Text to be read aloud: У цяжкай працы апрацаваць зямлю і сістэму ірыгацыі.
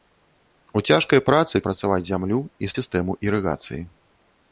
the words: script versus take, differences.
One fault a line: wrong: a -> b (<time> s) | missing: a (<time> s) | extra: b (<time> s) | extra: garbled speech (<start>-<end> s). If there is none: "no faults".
no faults